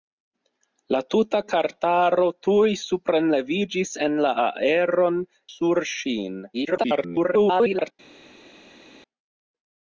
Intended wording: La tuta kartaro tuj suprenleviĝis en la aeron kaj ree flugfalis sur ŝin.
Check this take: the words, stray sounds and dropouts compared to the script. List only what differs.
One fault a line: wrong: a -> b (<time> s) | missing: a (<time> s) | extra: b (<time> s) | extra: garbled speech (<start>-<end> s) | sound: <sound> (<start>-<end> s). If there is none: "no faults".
missing: kaj ree flugfalis (5.2 s)
extra: garbled speech (6.5-7.9 s)